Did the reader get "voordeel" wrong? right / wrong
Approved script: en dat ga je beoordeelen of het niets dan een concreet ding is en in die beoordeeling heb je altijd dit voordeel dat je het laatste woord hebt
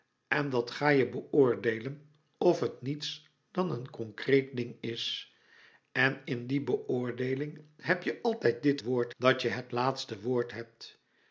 wrong